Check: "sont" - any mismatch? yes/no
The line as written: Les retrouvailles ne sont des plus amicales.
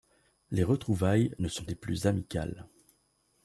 no